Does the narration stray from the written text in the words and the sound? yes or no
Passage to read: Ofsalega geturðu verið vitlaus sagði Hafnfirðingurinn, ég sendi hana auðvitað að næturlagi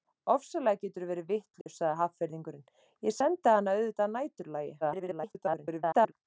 yes